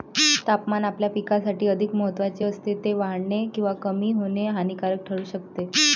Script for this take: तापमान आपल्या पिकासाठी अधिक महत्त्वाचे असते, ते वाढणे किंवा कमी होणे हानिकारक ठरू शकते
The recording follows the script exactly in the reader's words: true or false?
true